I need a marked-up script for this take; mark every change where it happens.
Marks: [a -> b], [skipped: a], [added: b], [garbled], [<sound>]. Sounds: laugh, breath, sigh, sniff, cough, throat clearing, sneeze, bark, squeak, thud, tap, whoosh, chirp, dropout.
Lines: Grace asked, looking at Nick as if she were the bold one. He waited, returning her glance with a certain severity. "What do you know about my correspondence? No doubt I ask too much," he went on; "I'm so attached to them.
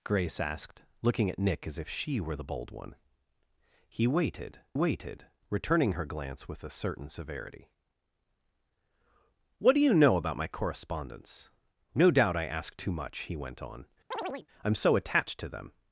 Grace asked, looking at Nick as if she were the bold one. He waited, [added: waited] returning her glance with a certain severity. "What do you know about my correspondence? No doubt I ask too much," he went on; [chirp] "I'm so attached to them.